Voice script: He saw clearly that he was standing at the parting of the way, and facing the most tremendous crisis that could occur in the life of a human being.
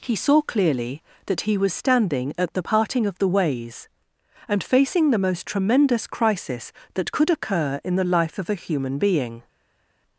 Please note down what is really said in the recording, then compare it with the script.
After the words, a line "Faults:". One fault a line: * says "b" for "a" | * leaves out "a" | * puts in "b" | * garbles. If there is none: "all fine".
He saw clearly that he was standing at the parting of the ways, and facing the most tremendous crisis that could occur in the life of a human being.
Faults:
* says "ways" for "way"